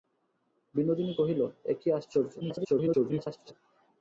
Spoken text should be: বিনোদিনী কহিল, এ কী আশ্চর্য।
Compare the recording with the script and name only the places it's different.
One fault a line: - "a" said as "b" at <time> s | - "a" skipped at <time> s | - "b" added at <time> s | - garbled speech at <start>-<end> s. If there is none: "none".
- garbled speech at 2.4-3.5 s